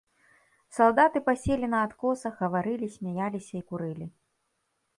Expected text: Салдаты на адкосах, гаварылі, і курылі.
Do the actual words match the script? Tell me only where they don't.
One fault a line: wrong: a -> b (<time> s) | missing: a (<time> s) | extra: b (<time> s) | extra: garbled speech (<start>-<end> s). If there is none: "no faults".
extra: паселі (1.3 s)
extra: смяяліся (3.0 s)